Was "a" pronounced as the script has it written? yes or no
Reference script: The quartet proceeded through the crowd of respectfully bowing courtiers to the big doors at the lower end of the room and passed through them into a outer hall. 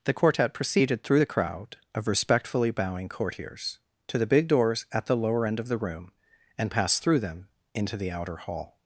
no